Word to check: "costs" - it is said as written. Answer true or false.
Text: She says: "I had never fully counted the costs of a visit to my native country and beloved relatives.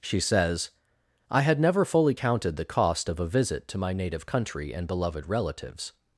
false